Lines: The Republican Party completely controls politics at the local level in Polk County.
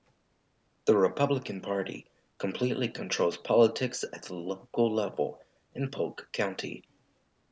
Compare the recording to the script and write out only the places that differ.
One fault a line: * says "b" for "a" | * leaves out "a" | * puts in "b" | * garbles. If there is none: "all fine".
all fine